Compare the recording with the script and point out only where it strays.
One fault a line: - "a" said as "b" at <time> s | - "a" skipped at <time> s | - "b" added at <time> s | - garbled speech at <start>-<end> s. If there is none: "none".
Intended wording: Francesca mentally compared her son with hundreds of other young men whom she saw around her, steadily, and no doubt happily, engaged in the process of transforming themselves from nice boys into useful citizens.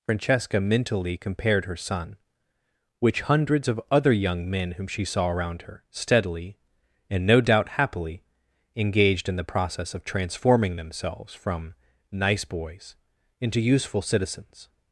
- "with" said as "which" at 3.0 s